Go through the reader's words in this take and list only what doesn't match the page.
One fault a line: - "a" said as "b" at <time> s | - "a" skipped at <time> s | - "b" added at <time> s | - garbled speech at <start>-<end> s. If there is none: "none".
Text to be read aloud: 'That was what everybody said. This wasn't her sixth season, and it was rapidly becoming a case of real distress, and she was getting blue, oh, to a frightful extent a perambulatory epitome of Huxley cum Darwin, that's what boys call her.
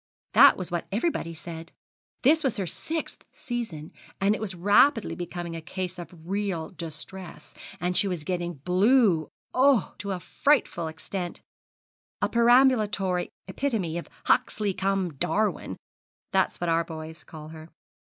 - "wasn't" said as "was" at 2.4 s
- "our" added at 16.7 s